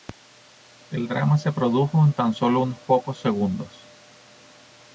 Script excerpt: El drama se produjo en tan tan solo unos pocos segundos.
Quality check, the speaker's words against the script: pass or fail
fail